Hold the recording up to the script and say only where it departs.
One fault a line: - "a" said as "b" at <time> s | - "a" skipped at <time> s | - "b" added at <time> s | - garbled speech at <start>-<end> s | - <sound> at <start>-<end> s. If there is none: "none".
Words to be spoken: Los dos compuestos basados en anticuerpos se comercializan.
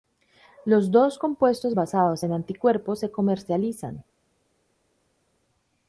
none